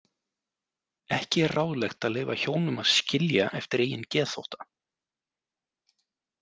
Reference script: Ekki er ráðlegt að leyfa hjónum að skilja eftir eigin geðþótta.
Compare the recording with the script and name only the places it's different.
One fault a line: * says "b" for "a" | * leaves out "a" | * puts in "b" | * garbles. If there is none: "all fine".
all fine